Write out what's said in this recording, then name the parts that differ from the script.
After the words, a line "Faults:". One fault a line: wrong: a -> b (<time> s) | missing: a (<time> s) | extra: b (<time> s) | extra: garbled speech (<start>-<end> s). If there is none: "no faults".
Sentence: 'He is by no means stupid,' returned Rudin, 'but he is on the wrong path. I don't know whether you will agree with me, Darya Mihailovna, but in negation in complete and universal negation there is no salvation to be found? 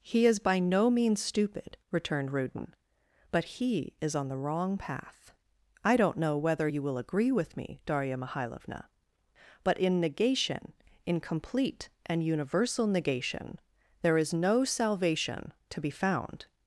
'He is by no means stupid,' returned Rudin, 'but he is on the wrong path. I don't know whether you will agree with me, Darya Mihailovna, but in negation in complete and universal negation there is no salvation to be found?
Faults:
no faults